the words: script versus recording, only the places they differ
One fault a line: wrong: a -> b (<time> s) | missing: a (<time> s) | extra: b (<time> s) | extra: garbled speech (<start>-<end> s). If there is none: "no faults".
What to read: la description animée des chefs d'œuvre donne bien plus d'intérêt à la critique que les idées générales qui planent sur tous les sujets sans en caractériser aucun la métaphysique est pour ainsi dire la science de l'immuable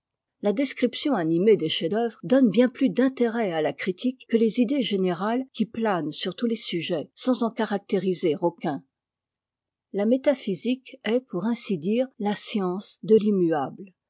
no faults